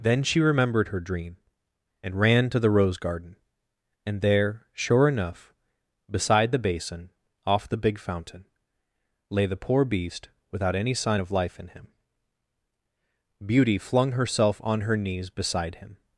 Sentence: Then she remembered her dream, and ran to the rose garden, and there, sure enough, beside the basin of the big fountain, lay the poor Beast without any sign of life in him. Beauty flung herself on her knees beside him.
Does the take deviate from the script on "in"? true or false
false